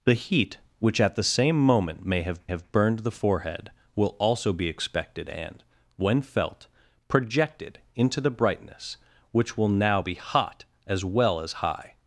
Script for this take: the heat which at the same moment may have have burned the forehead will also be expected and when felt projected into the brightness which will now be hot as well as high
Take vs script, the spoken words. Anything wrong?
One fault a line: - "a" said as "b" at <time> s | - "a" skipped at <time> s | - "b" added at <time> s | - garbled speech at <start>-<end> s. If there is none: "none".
none